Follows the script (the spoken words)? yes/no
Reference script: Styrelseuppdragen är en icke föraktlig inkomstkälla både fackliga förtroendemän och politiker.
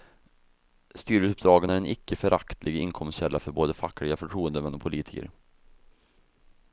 no